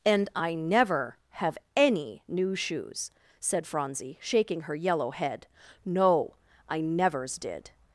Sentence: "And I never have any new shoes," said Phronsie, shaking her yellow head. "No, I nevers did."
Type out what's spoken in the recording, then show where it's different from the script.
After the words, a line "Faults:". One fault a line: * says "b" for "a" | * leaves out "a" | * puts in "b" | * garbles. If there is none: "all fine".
"And I never have any new shoes," said Phronsie, shaking her yellow head. "No, I nevers did."
Faults:
all fine